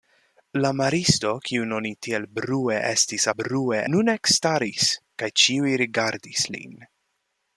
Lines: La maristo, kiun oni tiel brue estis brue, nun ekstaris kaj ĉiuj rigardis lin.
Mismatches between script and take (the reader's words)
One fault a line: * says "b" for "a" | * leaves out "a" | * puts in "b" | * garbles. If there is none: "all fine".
all fine